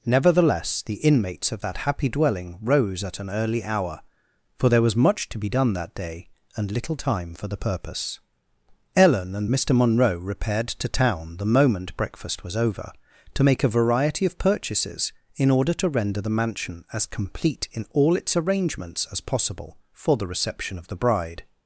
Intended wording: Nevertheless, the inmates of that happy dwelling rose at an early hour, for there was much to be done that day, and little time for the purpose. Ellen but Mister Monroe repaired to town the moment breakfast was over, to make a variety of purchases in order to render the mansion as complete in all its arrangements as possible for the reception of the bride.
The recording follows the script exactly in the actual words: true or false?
false